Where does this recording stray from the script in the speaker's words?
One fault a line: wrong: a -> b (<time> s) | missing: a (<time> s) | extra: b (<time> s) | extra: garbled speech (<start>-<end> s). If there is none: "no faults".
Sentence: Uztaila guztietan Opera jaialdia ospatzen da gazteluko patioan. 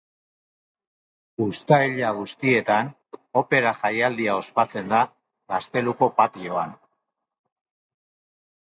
no faults